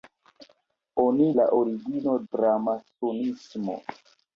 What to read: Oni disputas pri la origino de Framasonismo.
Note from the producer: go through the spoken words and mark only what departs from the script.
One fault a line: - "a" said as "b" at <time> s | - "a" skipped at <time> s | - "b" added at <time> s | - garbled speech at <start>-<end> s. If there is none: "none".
- "disputas pri" skipped at 1.3 s
- "de" skipped at 2.2 s